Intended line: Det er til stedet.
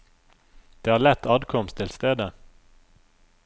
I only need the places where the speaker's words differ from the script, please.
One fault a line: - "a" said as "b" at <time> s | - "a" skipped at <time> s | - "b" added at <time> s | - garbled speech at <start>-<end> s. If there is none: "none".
- "lett adkomst" added at 1.0 s